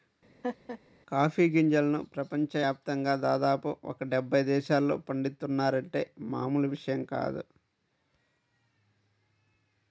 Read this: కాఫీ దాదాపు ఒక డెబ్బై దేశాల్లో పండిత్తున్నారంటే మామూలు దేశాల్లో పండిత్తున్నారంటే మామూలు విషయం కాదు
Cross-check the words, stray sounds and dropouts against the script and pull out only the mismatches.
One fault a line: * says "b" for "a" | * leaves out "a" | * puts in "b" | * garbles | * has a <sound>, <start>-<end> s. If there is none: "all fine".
* has a laugh, 0.4-0.8 s
* puts in "గింజలను ప్రపంచ యాప్తంగా"
* leaves out "దేశాల్లో పండిత్తున్నారంటే మామూలు"